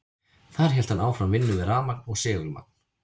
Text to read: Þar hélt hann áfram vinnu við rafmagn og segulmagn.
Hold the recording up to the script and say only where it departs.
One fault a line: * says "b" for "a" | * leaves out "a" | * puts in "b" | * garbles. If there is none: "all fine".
all fine